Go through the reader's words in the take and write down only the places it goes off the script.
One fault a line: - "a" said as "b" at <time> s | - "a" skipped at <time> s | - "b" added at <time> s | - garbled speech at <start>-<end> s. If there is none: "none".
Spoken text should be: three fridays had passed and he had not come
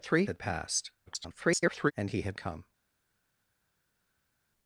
- "fridays" skipped at 0.2 s
- garbled speech at 1.1-1.9 s
- "not" skipped at 2.4 s